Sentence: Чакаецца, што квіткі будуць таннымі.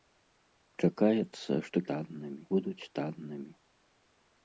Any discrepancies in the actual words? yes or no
yes